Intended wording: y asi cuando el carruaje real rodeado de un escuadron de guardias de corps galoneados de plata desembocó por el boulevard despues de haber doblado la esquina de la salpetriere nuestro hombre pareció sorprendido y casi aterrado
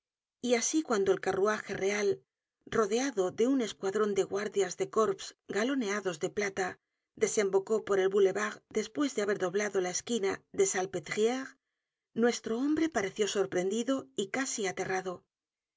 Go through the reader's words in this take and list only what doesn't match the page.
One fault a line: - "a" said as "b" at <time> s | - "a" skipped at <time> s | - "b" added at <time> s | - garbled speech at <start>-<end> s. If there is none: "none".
none